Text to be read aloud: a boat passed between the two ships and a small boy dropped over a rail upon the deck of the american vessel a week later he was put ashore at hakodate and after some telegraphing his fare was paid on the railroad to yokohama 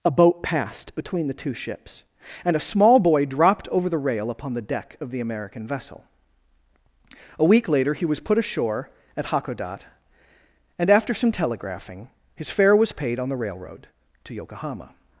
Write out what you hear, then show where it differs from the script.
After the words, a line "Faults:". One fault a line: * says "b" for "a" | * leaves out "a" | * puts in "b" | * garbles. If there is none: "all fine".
a boat passed between the two ships and a small boy dropped over the rail upon the deck of the american vessel a week later he was put ashore at hakodate and after some telegraphing his fare was paid on the railroad to yokohama
Faults:
* says "the" for "a"